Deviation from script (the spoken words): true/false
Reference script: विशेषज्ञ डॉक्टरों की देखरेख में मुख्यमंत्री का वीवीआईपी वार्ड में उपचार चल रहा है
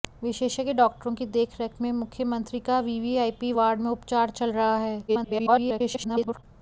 true